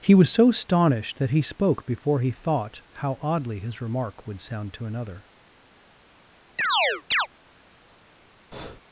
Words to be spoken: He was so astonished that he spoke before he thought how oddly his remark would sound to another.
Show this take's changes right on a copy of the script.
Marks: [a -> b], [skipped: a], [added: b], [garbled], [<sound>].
He was so astonished that he spoke before he thought how oddly his remark would sound to another. [chirp] [breath]